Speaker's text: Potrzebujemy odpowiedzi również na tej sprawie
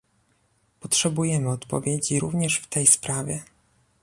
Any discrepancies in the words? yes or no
yes